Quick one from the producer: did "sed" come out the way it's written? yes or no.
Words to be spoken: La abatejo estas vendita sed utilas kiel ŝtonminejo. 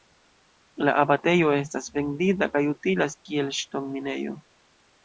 no